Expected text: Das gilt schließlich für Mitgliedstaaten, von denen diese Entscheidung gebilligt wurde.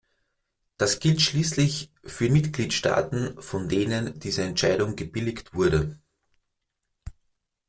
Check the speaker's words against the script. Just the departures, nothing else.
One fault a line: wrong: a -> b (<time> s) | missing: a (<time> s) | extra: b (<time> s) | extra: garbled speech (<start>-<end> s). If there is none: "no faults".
no faults